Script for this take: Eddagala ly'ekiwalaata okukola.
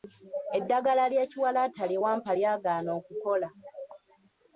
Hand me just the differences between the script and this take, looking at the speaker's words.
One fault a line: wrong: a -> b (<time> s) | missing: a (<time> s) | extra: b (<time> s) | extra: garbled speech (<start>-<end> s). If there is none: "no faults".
extra: lye wampa lyagaana (1.9 s)